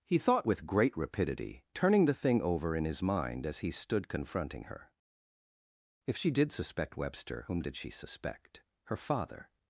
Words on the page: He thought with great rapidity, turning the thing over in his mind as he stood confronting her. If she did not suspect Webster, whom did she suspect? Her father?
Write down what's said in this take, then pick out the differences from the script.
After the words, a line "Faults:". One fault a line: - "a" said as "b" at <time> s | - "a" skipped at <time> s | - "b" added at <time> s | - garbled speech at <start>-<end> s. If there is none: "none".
He thought with great rapidity, turning the thing over in his mind as he stood confronting her. If she did suspect Webster, whom did she suspect? Her father?
Faults:
- "not" skipped at 6.5 s